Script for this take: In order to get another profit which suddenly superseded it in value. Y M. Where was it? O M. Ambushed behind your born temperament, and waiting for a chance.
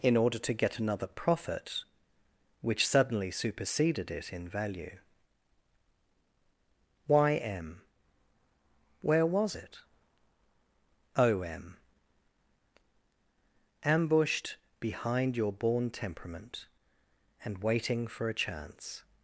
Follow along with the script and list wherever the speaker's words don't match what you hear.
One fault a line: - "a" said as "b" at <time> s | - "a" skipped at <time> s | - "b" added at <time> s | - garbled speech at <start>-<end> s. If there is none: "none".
none